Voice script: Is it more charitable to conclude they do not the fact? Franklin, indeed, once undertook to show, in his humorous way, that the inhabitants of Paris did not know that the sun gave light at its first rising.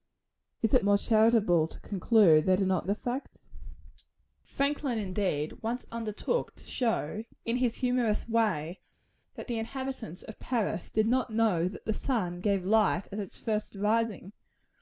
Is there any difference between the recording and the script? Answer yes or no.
no